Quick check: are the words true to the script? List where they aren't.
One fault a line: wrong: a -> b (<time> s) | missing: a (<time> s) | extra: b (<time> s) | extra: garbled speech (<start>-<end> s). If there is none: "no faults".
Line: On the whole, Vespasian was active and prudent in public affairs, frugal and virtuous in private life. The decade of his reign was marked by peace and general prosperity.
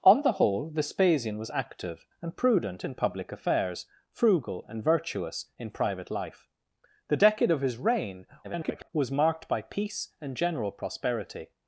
extra: garbled speech (8.4-8.9 s)